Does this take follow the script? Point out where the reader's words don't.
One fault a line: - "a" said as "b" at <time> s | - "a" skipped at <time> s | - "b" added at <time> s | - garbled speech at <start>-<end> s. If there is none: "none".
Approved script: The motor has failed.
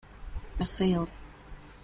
- "motor" skipped at 0.7 s